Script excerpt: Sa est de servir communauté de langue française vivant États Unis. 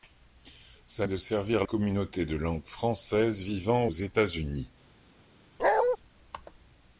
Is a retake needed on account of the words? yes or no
no